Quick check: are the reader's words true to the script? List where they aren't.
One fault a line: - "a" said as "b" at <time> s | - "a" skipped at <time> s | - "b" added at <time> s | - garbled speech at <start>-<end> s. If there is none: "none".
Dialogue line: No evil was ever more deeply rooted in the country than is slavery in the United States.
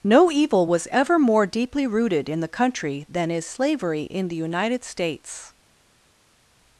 none